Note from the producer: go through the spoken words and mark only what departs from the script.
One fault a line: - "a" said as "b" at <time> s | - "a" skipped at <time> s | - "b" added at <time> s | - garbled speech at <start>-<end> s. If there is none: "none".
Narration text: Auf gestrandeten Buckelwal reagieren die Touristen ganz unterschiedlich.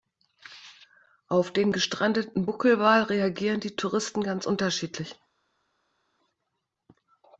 - "den" added at 1.5 s